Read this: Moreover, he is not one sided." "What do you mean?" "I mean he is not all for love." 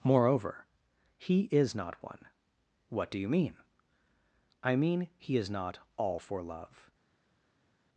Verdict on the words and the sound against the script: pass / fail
fail